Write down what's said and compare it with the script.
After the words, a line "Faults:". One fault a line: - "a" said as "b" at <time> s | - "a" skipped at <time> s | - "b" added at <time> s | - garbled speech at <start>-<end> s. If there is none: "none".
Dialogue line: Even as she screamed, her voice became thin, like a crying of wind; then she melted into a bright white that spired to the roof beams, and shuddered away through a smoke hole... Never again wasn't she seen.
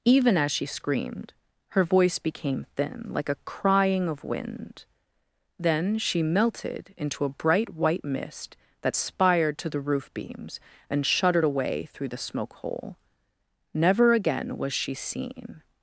Even as she screamed, her voice became thin, like a crying of wind; then she melted into a bright white mist that spired to the roof beams, and shuddered away through the smoke hole... Never again was she seen.
Faults:
- "mist" added at 8.0 s
- "a" said as "the" at 12.1 s
- "wasn't" said as "was" at 14.6 s